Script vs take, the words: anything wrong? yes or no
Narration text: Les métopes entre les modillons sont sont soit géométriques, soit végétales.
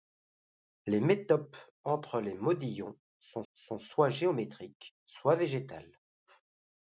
no